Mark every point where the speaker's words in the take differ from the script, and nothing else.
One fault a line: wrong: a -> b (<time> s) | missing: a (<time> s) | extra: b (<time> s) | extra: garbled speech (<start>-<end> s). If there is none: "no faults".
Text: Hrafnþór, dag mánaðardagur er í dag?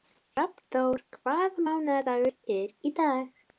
wrong: dag -> hvaða (1.2 s)